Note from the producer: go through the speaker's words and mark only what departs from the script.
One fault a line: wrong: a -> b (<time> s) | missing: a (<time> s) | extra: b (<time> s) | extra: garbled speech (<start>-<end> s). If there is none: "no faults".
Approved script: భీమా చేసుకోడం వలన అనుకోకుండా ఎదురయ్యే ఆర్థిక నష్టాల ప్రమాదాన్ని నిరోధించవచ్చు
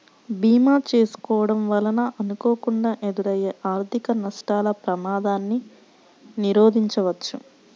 no faults